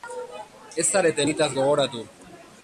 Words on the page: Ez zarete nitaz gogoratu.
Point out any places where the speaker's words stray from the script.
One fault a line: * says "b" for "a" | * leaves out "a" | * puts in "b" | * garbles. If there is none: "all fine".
all fine